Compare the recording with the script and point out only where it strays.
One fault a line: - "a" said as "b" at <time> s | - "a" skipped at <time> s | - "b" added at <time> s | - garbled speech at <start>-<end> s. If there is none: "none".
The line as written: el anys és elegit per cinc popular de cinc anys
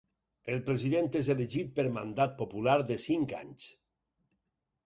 - "anys" said as "president" at 0.7 s
- "cinc" said as "mandat" at 2.0 s